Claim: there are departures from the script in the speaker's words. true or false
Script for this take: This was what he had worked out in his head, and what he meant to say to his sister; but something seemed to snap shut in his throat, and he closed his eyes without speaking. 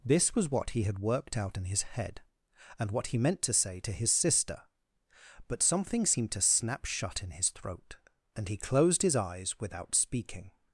false